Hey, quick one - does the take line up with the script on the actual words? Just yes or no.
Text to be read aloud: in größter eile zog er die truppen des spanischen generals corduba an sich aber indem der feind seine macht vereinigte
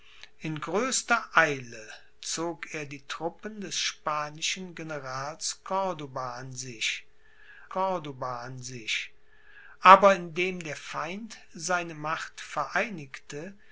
no